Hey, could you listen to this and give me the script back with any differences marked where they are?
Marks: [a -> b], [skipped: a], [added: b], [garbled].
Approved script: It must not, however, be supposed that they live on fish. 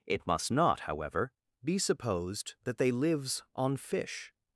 It must not, however, be supposed that they [live -> lives] on fish.